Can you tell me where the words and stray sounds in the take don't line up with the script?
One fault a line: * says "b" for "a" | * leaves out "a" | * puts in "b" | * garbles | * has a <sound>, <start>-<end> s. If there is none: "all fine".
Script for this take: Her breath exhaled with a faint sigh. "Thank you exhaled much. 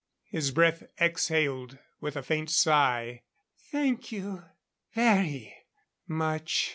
* says "His" for "Her"
* says "very" for "exhaled"